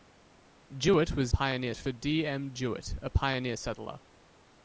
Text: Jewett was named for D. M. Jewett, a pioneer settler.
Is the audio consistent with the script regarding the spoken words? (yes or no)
no